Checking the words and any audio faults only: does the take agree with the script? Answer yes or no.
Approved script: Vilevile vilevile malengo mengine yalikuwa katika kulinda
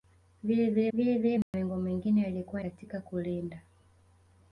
no